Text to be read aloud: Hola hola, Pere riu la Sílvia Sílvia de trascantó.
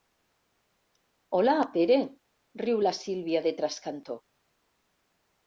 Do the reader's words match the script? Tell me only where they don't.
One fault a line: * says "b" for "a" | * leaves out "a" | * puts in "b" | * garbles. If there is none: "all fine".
* leaves out "hola"
* leaves out "Sílvia"